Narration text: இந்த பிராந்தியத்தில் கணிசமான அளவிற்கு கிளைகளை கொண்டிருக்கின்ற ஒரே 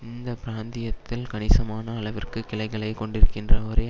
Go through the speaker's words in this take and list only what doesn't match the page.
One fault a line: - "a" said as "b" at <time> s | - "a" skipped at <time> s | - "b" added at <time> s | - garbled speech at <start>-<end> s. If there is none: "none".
none